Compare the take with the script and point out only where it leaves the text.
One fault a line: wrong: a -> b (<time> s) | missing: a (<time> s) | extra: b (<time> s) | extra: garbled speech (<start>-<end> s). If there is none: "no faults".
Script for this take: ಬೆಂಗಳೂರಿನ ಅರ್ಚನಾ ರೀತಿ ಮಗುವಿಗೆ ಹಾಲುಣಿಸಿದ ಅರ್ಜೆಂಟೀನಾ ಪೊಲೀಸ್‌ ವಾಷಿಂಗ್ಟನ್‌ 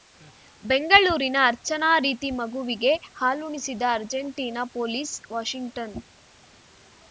no faults